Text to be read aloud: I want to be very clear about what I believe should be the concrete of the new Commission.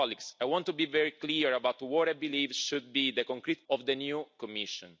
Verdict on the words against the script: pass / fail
pass